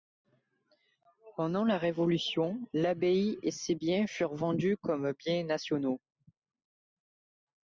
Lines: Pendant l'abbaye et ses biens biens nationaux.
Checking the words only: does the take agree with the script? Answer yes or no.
no